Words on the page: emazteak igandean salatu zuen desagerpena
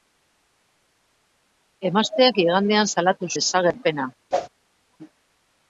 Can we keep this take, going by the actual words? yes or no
no